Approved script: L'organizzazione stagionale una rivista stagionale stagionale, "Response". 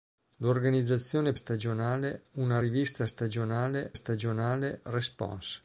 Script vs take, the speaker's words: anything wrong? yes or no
no